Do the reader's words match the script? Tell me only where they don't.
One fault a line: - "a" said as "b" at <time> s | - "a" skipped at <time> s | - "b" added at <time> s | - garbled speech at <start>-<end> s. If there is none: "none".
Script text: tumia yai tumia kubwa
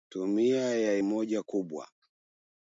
- "tumia" said as "moja" at 1.0 s